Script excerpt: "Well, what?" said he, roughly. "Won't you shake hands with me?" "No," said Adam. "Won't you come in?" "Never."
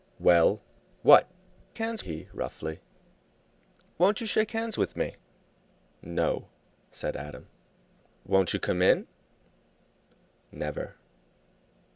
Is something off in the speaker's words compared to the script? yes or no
yes